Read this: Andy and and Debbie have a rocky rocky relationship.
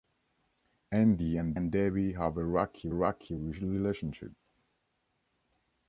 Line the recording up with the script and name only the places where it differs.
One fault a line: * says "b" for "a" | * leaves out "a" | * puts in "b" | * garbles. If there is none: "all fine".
all fine